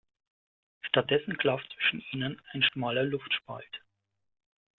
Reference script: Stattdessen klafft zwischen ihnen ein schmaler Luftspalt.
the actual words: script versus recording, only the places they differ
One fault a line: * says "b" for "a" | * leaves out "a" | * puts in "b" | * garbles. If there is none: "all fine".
all fine